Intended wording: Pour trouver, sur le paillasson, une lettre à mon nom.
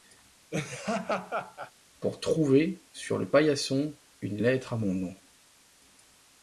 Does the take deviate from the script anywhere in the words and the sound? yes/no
yes